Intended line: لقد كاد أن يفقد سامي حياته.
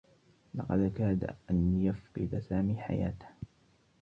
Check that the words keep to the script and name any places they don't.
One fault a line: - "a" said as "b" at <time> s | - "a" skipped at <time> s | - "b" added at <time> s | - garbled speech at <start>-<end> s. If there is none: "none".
none